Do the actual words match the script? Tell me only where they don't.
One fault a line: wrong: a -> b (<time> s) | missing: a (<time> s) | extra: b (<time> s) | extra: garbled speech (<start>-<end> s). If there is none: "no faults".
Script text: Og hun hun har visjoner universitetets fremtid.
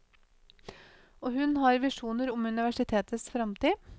missing: hun (1.6 s)
extra: om (2.3 s)